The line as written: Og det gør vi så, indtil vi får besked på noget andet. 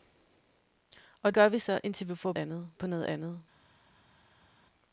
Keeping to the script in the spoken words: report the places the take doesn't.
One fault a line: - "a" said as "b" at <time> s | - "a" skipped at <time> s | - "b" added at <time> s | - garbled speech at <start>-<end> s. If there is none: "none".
- "det" skipped at 1.3 s
- "besked" said as "andet" at 2.3 s